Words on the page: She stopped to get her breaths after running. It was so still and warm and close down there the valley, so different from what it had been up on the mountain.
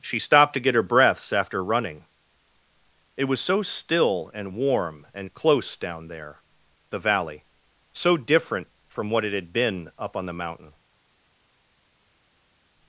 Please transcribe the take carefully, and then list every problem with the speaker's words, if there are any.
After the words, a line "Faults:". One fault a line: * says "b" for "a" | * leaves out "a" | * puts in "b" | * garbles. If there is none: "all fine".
She stopped to get her breaths after running. It was so still and warm and close down there the valley, so different from what it had been up on the mountain.
Faults:
all fine